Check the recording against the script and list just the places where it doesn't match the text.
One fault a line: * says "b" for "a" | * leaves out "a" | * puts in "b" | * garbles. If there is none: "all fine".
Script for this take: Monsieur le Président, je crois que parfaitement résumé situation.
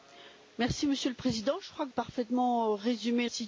all fine